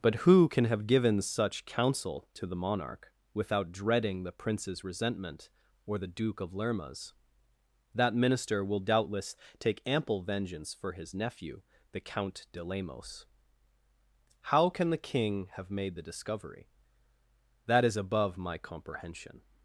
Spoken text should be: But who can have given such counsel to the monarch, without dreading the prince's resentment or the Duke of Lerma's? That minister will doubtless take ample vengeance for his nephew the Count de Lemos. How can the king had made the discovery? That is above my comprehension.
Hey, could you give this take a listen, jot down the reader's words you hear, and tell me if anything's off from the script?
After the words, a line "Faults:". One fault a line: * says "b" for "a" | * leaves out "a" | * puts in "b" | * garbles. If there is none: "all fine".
But who can have given such counsel to the monarch, without dreading the prince's resentment or the Duke of Lerma's? That minister will doubtless take ample vengeance for his nephew the Count de Lemos. How can the king have made the discovery? That is above my comprehension.
Faults:
* says "have" for "had"